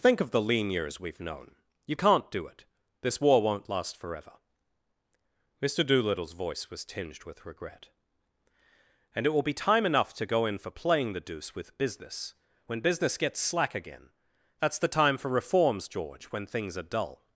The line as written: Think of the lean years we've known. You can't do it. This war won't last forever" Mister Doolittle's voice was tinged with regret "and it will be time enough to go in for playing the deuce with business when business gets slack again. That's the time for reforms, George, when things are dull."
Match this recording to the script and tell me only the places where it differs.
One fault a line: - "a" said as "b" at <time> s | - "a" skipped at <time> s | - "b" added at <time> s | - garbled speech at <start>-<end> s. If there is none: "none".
none